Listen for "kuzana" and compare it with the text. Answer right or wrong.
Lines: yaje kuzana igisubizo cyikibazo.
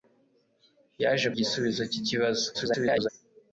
wrong